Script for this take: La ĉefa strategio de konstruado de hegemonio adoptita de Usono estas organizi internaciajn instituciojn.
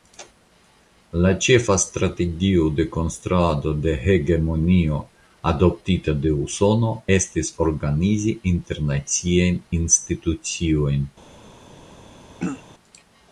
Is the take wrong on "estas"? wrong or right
wrong